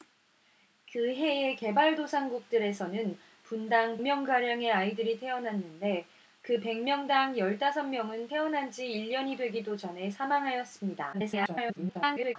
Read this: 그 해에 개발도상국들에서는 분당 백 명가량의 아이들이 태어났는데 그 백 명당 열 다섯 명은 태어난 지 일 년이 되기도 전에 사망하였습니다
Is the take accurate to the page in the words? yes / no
no